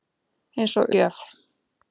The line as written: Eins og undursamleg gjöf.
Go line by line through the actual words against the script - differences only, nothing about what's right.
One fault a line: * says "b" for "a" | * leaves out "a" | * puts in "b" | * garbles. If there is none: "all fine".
* leaves out "undursamleg"